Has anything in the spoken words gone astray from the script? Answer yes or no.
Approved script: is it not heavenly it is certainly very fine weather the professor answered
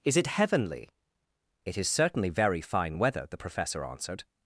yes